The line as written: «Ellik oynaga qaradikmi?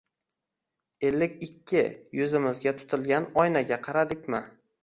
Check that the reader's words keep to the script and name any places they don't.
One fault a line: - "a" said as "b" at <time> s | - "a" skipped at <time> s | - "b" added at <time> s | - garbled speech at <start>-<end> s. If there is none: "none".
- "ikki yuzimizga tutilgan" added at 1.5 s